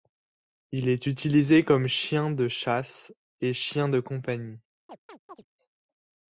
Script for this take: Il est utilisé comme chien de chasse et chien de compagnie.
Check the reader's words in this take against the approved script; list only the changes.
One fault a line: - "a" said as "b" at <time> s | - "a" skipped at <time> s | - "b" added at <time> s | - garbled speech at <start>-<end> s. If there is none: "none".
none